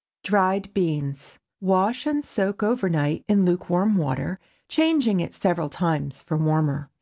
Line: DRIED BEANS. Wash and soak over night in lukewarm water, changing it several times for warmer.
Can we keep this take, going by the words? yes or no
yes